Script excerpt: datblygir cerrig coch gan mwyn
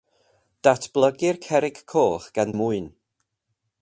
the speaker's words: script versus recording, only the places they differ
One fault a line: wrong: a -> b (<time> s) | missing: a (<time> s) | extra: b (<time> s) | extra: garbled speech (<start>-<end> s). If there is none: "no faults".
no faults